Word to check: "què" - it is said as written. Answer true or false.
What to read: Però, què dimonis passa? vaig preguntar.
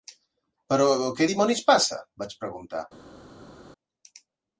true